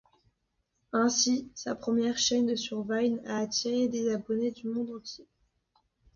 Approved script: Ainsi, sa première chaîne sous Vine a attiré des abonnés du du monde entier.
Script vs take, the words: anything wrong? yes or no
yes